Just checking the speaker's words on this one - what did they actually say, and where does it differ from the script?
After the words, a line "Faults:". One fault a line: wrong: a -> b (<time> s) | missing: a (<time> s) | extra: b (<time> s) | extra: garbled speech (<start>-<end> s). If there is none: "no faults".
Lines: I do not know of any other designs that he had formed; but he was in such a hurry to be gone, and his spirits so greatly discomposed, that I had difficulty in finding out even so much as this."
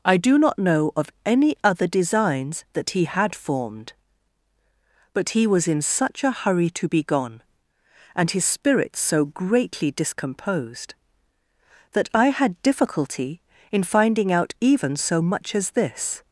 I do not know of any other designs that he had formed; but he was in such a hurry to be gone, and his spirits so greatly discomposed, that I had difficulty in finding out even so much as this."
Faults:
no faults